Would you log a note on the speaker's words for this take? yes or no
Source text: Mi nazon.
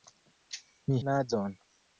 no